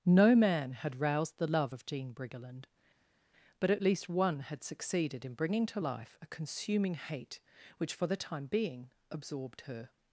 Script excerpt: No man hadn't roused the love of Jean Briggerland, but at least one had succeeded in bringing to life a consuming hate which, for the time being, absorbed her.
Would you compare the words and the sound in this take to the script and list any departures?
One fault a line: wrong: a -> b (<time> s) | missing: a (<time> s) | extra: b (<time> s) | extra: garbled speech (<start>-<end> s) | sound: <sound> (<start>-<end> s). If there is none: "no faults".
wrong: hadn't -> had (0.7 s)